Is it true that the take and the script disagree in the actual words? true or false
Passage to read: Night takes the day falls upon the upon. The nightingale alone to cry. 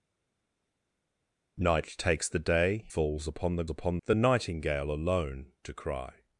false